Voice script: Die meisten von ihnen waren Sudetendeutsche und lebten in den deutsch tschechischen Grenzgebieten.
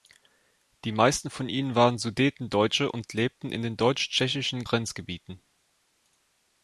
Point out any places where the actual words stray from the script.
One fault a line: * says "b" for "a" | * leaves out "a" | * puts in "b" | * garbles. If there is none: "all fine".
all fine